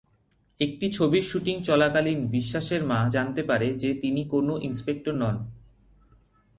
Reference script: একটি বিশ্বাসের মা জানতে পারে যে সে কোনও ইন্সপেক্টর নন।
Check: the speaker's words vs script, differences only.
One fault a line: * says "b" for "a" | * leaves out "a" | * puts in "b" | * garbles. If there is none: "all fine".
* puts in "ছবির শুটিং চলাকালীন"
* says "তিনি" for "সে"